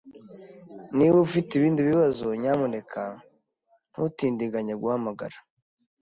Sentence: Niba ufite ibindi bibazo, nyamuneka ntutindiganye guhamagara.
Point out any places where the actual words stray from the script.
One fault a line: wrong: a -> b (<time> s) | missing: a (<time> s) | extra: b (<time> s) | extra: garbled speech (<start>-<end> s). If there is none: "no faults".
no faults